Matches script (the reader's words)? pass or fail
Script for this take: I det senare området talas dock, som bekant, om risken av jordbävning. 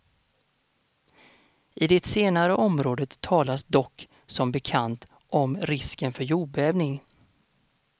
fail